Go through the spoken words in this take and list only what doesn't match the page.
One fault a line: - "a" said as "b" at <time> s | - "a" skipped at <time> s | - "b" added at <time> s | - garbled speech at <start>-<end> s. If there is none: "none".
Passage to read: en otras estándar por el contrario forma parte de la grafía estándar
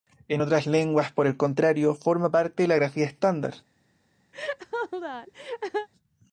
- "estándar" said as "lenguas" at 0.7 s